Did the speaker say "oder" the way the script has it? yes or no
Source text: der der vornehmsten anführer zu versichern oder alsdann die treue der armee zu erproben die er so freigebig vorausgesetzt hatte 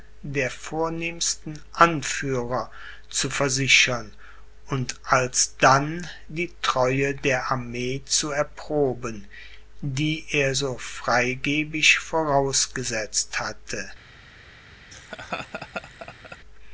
no